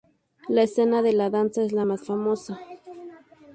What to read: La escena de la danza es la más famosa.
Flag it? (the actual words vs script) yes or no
no